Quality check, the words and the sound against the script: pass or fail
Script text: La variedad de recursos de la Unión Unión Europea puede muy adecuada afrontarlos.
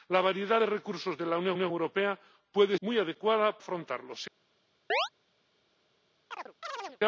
fail